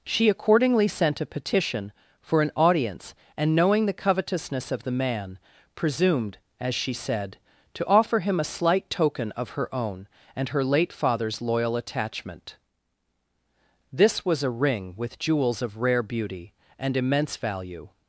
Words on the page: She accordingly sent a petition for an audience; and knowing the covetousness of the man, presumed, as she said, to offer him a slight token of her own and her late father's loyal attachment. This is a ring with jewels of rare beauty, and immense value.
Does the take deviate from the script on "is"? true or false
true